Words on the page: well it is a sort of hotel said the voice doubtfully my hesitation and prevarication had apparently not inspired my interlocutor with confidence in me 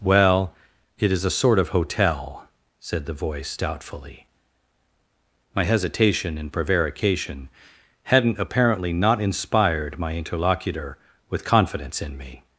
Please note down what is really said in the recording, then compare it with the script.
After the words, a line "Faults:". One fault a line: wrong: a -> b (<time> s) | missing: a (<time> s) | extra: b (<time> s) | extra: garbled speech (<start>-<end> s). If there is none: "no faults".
well it is a sort of hotel said the voice doubtfully my hesitation and prevarication hadn't apparently not inspired my interlocutor with confidence in me
Faults:
wrong: had -> hadn't (8.0 s)